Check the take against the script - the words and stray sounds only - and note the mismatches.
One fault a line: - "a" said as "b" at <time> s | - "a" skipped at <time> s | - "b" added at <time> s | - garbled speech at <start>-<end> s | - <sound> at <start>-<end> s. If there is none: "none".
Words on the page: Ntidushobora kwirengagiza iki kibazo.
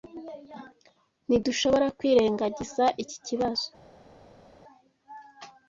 none